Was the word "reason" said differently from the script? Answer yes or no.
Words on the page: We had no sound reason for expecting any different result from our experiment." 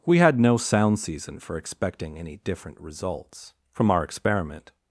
yes